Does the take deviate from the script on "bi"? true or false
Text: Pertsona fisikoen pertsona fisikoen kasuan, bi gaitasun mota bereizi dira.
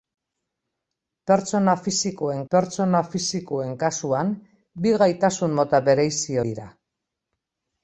false